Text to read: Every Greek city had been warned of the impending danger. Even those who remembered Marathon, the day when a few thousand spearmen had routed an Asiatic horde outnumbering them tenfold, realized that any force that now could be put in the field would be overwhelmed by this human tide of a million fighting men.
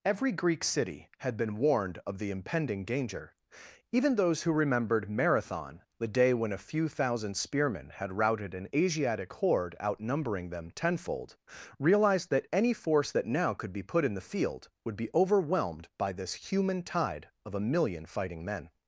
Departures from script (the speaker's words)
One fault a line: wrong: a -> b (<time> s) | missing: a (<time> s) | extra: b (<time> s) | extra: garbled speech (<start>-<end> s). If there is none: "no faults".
no faults